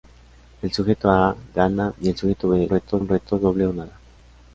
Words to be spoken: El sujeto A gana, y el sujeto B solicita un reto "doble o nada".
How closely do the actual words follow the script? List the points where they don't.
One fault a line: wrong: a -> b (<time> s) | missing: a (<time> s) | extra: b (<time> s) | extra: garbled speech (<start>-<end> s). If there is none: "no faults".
wrong: solicita -> reto (2.7 s)